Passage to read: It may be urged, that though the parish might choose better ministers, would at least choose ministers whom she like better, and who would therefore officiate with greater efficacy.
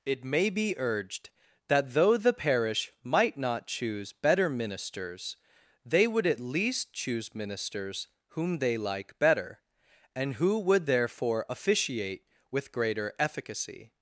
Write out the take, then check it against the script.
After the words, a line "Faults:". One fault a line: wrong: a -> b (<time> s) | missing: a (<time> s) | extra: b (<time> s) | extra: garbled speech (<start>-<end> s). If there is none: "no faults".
It may be urged, that though the parish might not choose better ministers, they would at least choose ministers whom they like better, and who would therefore officiate with greater efficacy.
Faults:
extra: not (3.4 s)
extra: they (5.8 s)
wrong: she -> they (8.6 s)